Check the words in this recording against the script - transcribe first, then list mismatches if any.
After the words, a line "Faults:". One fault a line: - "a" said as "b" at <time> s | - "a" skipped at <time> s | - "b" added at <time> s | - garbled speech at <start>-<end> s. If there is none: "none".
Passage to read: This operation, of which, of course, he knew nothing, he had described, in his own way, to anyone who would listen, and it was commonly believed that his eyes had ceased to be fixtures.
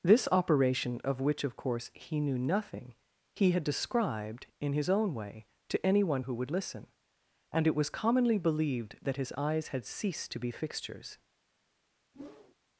This operation, of which, of course, he knew nothing, he had described, in his own way, to anyone who would listen, and it was commonly believed that his eyes had ceased to be fixtures.
Faults:
none